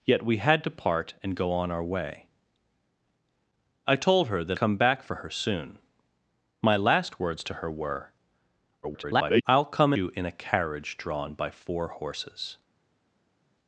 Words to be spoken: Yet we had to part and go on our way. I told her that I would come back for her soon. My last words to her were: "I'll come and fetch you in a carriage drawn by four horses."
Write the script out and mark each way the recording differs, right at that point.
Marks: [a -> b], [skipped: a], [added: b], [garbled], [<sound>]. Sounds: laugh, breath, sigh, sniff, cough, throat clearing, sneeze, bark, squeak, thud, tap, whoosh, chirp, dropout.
Yet we had to part and go on our way. I told her that [skipped: I would] come back for her soon. My last words to her were: [garbled] "I'll come [skipped: and fetch] you in a carriage drawn by four horses."